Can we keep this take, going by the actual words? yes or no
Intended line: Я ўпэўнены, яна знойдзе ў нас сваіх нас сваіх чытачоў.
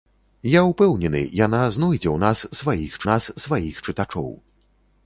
yes